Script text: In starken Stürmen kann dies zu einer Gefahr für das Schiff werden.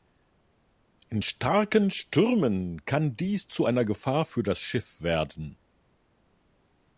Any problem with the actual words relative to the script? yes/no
no